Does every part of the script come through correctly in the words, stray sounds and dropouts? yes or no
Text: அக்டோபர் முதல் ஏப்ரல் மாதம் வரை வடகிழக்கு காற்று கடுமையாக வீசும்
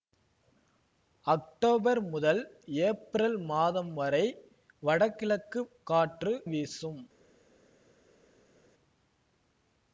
no